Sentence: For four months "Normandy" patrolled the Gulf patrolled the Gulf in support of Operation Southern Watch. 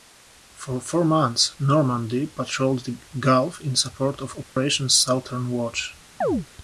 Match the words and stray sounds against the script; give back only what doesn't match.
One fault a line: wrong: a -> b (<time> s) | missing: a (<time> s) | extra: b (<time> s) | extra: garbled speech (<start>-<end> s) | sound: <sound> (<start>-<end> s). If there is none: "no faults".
missing: patrolled the Gulf (3.6 s)
sound: dropout (4.4-4.6 s)
sound: chirp (6.2-6.5 s)